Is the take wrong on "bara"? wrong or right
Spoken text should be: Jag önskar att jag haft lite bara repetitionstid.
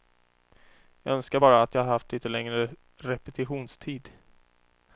wrong